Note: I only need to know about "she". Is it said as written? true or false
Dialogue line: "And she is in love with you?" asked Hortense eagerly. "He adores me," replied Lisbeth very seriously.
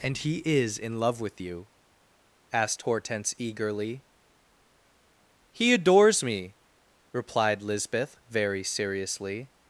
false